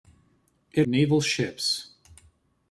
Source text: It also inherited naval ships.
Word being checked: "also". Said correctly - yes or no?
no